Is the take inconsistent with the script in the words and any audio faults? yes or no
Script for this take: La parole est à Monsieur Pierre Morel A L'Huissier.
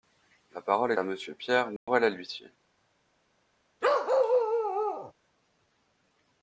yes